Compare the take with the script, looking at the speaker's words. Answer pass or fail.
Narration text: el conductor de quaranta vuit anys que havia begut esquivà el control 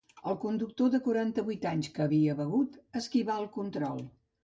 pass